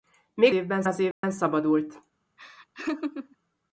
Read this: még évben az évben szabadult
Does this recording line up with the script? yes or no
yes